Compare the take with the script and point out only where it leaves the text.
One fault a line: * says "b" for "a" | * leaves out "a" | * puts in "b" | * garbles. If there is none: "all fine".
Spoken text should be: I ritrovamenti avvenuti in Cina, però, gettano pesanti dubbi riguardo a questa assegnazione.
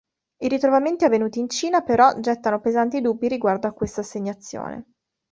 all fine